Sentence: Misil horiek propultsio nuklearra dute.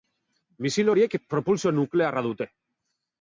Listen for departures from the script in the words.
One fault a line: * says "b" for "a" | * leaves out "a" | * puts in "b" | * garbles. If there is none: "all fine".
all fine